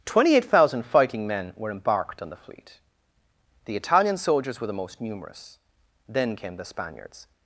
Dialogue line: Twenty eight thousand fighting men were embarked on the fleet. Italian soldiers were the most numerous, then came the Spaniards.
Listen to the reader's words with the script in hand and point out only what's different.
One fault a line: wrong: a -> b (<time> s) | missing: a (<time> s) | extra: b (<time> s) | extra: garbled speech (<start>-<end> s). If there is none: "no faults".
extra: The (3.6 s)